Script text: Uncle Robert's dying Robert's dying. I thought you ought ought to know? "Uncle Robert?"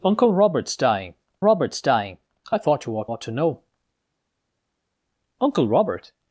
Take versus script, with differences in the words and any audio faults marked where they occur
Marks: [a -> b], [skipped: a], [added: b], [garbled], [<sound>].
Uncle Robert's dying Robert's dying. I thought you ought ought to know? "Uncle Robert?"